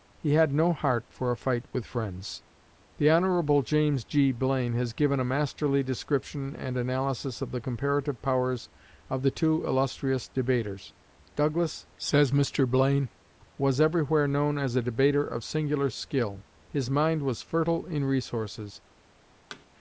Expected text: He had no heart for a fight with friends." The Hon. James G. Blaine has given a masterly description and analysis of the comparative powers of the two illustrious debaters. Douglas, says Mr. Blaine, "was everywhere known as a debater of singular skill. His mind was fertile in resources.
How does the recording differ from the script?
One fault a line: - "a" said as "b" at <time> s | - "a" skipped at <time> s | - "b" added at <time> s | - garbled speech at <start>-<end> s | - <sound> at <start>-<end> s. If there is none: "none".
- thud at 19.5-19.7 s